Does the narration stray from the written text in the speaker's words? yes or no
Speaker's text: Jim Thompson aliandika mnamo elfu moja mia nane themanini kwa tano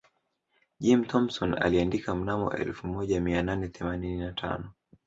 yes